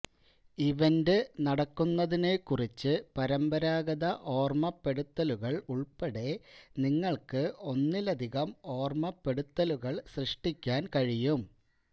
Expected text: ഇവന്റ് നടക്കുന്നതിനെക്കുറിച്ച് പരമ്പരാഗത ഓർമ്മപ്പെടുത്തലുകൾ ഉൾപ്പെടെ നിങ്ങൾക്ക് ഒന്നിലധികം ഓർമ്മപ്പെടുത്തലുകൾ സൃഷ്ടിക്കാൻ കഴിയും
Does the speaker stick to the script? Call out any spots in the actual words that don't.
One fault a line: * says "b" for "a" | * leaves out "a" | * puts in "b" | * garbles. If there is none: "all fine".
all fine